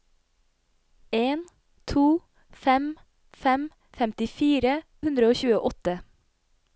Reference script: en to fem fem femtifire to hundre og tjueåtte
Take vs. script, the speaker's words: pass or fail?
fail